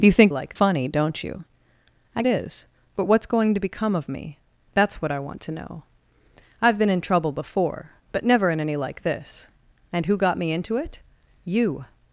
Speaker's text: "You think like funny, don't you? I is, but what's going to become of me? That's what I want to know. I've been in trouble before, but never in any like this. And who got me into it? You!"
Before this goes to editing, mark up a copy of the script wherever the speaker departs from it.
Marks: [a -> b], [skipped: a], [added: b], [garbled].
"You think like funny, don't you? I is, but what's going to become of me? That's what I want to know. I've been in trouble before, but never in any like this. And who got me into it? You!"